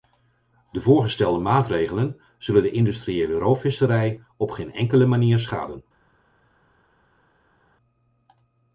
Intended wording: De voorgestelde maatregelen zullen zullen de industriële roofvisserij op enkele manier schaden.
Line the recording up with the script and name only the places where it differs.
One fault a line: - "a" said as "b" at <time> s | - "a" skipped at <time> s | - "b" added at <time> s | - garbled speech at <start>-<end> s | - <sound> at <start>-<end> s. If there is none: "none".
- "zullen" skipped at 2.6 s
- "geen" added at 4.5 s